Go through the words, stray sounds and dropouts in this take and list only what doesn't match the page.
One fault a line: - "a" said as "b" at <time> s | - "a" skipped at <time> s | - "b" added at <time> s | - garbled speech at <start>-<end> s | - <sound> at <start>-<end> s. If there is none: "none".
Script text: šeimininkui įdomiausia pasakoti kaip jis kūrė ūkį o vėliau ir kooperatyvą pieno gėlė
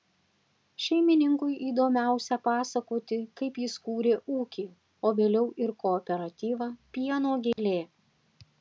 - dropout at 7.5-7.6 s